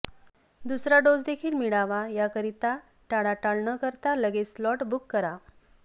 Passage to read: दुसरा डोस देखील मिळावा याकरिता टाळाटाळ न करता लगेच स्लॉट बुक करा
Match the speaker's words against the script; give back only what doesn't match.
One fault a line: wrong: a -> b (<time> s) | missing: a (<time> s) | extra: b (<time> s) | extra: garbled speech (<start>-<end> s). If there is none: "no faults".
no faults